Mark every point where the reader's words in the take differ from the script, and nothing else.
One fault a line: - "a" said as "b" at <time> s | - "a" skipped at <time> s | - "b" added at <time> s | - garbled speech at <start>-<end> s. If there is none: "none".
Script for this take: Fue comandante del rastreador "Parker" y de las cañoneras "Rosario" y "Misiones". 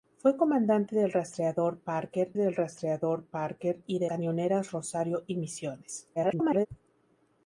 - "del rastreador Parker" added at 2.4 s
- "las" skipped at 4.1 s
- garbled speech at 6.2-6.7 s